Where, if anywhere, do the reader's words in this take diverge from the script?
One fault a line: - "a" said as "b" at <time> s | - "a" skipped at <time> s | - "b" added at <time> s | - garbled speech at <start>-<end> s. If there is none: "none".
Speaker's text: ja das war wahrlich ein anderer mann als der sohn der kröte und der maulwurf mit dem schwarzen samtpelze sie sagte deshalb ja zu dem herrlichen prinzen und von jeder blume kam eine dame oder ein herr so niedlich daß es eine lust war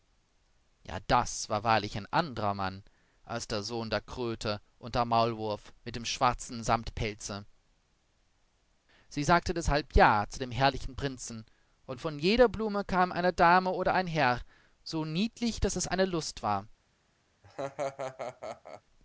none